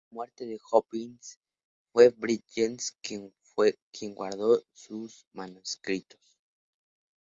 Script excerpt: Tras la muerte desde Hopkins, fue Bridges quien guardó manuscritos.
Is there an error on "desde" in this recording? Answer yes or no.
yes